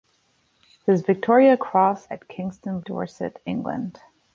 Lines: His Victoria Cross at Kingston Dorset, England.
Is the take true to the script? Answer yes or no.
yes